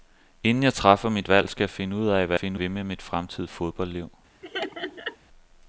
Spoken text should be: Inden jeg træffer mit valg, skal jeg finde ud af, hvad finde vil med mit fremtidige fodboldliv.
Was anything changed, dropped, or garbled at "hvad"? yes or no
no